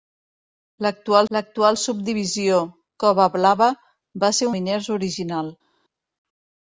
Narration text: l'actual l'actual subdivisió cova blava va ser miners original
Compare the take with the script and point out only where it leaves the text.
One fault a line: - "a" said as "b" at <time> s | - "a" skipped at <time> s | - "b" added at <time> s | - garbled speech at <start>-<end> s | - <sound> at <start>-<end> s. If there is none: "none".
none